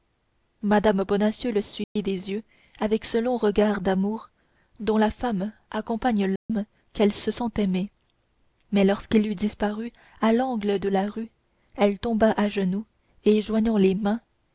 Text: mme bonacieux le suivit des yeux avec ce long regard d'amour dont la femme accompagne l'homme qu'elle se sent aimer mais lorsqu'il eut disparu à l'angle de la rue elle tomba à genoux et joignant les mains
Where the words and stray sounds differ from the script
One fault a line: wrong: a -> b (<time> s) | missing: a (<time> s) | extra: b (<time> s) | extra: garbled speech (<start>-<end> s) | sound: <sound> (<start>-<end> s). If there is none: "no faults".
sound: dropout (1.8-2.0 s)
sound: dropout (6.4-6.5 s)